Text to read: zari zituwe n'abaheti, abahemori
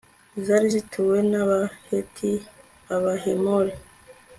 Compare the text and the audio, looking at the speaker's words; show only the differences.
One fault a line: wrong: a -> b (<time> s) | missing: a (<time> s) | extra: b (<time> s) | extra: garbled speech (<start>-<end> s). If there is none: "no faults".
no faults